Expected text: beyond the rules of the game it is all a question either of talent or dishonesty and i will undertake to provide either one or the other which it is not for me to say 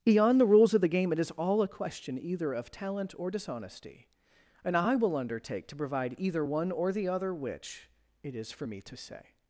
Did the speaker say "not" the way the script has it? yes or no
no